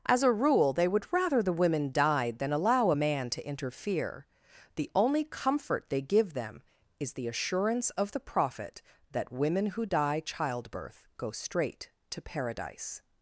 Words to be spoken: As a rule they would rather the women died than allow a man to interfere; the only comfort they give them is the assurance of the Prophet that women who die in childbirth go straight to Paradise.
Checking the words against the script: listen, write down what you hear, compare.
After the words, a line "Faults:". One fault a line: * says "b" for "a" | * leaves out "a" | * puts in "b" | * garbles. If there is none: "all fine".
As a rule they would rather the women died than allow a man to interfere; the only comfort they give them is the assurance of the Prophet that women who die childbirth go straight to Paradise.
Faults:
* leaves out "in"